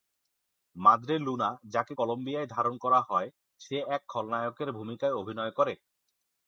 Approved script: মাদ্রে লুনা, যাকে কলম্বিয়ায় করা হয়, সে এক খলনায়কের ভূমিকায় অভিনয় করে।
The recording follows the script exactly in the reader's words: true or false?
false